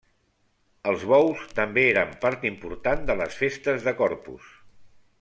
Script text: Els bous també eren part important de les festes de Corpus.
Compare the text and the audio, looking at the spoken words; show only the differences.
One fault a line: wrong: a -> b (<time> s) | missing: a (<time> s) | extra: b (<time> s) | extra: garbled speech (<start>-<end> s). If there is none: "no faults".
no faults